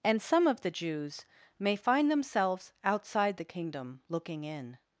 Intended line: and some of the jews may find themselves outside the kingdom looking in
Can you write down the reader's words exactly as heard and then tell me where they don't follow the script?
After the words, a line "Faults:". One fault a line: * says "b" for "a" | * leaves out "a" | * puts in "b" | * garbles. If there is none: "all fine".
and some of the jews may find themselves outside the kingdom looking in
Faults:
all fine